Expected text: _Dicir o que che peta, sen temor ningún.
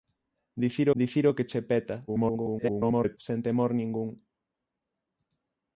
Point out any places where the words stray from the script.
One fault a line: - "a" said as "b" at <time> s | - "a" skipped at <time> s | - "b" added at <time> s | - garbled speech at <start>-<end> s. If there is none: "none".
- "dicir" added at 1.0 s
- garbled speech at 2.1-3.2 s